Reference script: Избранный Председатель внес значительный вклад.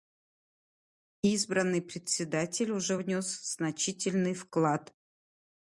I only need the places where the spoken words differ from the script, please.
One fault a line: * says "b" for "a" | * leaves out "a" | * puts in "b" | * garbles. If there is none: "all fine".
* puts in "уже"